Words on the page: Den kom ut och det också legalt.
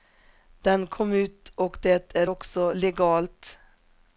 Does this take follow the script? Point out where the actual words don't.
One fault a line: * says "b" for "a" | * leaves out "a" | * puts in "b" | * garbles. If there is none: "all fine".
* puts in "är"